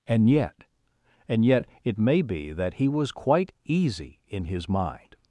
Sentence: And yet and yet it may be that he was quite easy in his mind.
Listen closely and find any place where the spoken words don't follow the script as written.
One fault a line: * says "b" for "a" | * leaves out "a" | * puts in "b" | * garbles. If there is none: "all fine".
all fine